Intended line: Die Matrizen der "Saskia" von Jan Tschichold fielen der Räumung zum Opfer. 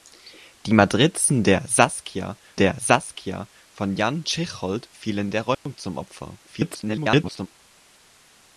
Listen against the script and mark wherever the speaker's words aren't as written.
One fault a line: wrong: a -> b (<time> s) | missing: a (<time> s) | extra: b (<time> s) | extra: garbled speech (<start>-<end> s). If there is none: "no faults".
extra: der Saskia (2.6 s)
extra: garbled speech (6.5-7.5 s)